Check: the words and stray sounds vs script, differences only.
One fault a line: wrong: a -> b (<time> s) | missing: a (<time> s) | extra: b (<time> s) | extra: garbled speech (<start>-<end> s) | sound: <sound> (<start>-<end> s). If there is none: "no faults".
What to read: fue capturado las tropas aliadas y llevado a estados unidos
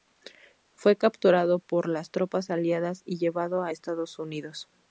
extra: por (1.6 s)